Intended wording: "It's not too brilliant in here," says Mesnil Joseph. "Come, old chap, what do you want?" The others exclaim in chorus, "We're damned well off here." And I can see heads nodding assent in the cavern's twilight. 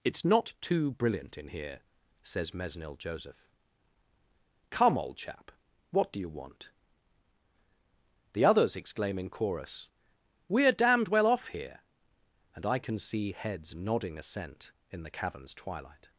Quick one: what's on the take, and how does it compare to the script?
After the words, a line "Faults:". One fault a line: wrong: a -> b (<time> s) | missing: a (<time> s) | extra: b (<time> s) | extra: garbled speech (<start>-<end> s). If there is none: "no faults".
"It's not too brilliant in here," says Mesnil Joseph. "Come, old chap, what do you want?" The others exclaim in chorus, "We're damned well off here." And I can see heads nodding assent in the cavern's twilight.
Faults:
no faults